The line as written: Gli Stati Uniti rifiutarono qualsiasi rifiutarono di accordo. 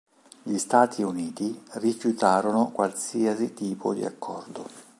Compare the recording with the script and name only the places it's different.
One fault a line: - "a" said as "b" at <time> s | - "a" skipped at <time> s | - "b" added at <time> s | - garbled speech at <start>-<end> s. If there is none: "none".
- "rifiutarono" said as "tipo" at 3.5 s